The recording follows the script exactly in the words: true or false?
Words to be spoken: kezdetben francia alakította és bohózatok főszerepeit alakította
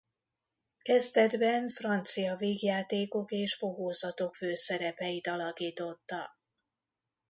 false